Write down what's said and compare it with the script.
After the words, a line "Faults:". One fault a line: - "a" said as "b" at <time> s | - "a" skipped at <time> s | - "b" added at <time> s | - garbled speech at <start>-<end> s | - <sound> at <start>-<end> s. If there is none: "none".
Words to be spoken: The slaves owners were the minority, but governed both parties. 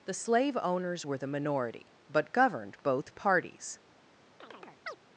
The slave owners were the minority, but governed both parties.
Faults:
- "slaves" said as "slave" at 0.1 s
- chirp at 4.4-5.0 s